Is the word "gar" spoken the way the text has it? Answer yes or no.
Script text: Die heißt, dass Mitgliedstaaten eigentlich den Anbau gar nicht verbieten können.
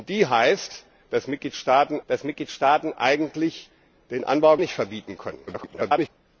no